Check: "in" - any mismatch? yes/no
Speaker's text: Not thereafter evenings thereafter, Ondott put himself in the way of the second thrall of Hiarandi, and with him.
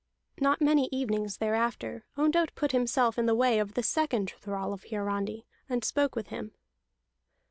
no